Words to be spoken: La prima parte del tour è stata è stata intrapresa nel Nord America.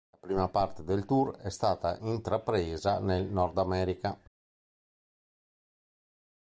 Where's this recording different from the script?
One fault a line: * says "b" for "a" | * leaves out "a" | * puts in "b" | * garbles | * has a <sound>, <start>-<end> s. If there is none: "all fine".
* leaves out "è stata"